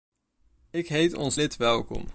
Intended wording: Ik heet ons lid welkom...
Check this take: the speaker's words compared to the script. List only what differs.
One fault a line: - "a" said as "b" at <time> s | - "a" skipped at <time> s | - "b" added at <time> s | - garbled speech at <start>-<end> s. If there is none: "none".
none